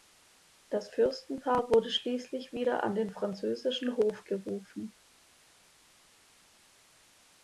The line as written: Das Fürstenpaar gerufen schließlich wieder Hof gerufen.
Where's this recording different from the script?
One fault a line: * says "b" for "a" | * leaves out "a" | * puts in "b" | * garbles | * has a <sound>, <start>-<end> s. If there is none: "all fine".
* says "wurde" for "gerufen"
* puts in "an den französischen"